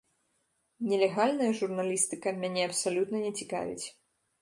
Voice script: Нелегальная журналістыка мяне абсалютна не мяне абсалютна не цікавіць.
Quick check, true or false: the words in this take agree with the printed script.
false